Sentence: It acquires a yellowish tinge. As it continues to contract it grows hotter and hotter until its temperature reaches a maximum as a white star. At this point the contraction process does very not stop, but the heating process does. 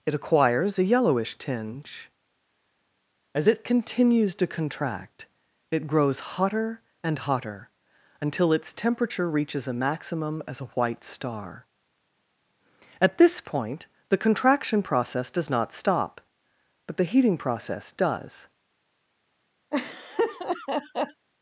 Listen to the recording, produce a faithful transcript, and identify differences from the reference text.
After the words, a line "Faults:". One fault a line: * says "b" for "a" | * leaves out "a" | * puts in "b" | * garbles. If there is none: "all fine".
It acquires a yellowish tinge. As it continues to contract it grows hotter and hotter until its temperature reaches a maximum as a white star. At this point the contraction process does not stop, but the heating process does.
Faults:
* leaves out "very"